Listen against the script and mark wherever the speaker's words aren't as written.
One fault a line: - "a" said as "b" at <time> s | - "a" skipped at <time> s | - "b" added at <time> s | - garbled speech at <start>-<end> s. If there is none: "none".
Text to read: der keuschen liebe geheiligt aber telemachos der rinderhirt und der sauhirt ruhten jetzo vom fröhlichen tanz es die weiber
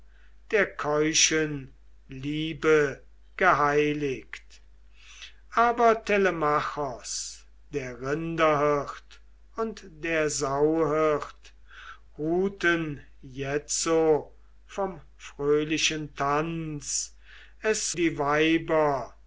none